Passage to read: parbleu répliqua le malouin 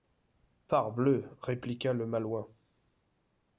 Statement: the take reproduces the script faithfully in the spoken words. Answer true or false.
true